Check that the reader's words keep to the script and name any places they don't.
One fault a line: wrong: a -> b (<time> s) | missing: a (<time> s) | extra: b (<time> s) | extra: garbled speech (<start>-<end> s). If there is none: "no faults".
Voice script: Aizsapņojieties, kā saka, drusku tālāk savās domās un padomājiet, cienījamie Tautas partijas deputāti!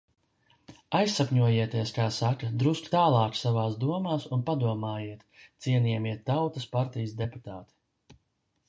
no faults